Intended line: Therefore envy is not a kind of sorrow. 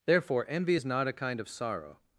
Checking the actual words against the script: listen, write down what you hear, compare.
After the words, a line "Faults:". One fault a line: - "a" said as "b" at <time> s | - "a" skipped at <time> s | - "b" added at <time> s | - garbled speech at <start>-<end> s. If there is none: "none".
Therefore envy is not a kind of sorrow.
Faults:
none